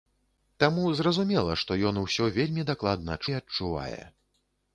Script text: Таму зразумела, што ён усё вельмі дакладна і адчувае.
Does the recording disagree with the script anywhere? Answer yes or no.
no